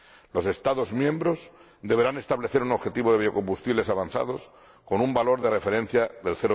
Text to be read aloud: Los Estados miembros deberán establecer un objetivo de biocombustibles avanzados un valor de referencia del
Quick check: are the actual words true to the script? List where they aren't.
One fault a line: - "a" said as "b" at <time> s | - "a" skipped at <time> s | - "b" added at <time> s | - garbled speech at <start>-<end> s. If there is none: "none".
- "con" added at 4.8 s